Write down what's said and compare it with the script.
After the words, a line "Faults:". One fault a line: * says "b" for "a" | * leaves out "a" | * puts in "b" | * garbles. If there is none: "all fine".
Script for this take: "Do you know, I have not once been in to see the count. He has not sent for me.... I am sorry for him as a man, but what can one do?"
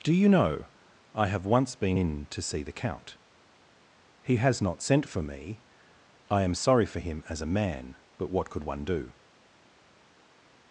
"Do you know, I have once been in to see the count. He has not sent for me.... I am sorry for him as a man, but what could one do?"
Faults:
* leaves out "not"
* says "could" for "can"